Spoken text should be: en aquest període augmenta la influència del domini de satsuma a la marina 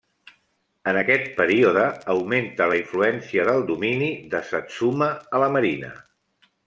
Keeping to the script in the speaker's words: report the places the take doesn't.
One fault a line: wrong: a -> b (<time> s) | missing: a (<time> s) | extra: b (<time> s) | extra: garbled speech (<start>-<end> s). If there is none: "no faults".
no faults